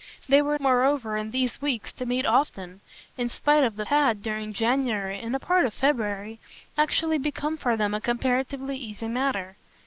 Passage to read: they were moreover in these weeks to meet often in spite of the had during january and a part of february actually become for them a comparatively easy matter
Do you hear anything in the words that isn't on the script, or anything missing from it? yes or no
no